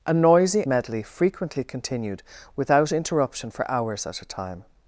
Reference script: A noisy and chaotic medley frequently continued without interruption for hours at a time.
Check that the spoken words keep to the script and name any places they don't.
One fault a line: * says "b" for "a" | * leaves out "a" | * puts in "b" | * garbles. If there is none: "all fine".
* leaves out "and chaotic"